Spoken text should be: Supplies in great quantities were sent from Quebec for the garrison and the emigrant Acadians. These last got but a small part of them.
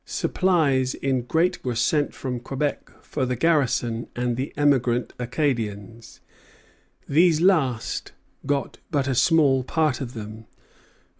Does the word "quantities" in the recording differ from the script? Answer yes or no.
yes